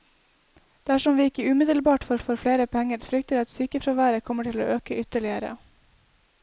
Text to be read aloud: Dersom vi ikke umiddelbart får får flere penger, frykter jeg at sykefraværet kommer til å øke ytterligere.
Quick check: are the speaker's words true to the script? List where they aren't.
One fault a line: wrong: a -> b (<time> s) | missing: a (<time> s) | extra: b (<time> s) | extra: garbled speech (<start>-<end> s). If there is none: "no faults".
no faults